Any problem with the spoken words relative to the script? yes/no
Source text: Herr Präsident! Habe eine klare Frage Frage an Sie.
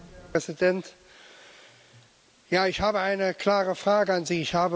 yes